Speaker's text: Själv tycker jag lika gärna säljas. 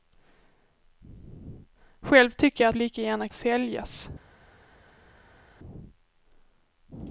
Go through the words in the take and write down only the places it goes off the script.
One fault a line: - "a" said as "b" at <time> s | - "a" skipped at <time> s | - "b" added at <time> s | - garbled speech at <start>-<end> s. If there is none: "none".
none